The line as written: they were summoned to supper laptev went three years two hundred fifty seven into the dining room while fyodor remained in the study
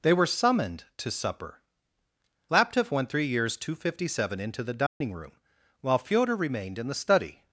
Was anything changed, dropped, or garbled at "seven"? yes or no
no